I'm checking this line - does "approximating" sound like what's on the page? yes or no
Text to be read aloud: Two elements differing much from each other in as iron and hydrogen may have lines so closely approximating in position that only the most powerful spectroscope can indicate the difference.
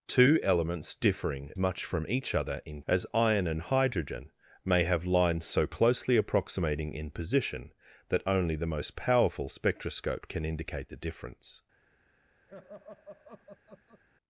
yes